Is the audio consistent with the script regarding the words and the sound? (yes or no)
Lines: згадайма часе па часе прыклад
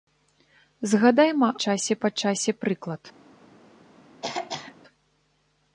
no